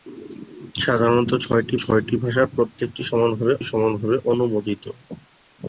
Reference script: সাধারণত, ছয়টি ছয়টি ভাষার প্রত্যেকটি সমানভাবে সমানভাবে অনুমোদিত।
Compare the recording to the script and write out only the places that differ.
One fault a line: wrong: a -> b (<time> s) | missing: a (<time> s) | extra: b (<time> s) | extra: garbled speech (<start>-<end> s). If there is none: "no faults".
no faults